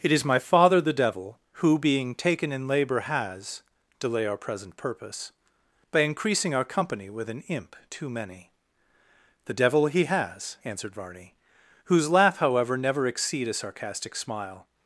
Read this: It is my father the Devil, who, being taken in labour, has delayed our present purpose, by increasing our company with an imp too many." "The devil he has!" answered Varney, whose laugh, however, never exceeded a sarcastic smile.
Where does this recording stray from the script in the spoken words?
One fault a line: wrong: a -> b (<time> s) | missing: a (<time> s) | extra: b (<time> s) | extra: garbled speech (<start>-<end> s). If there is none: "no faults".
wrong: delayed -> delay (4.0 s)
wrong: exceeded -> exceed (13.1 s)